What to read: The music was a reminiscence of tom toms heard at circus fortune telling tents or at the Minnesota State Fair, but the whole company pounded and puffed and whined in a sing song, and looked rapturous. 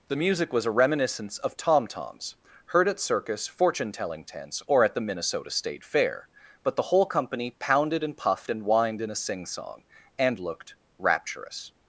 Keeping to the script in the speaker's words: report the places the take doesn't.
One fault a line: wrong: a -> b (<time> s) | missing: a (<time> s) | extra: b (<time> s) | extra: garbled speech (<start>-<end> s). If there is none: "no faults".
no faults